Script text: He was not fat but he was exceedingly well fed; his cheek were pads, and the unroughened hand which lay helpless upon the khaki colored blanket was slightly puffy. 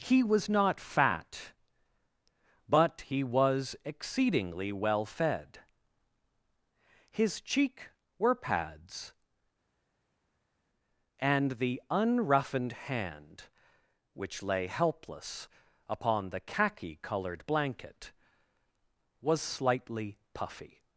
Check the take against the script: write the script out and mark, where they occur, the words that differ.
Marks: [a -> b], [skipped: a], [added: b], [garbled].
He was not fat but he was exceedingly well fed; his cheek were pads, and the unroughened hand which lay helpless upon the khaki colored blanket was slightly puffy.